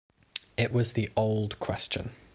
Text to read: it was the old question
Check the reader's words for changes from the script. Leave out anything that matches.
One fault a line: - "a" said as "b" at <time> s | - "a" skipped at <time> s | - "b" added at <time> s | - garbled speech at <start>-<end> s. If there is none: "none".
none